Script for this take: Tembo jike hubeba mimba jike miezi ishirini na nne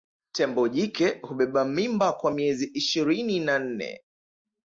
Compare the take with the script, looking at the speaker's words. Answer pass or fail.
fail